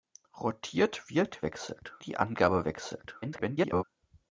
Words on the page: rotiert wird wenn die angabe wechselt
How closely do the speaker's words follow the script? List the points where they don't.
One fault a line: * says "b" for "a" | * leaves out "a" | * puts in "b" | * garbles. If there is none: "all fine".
* says "wechselt" for "wenn"
* garbles